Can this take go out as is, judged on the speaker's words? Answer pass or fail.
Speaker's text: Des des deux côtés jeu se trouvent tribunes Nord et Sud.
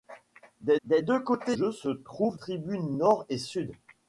pass